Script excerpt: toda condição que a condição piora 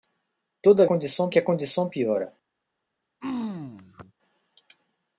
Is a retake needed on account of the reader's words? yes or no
no